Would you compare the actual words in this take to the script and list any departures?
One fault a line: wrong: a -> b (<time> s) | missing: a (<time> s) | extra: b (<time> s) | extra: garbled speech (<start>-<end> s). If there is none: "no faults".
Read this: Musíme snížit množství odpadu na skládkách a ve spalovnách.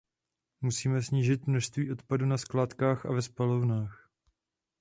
no faults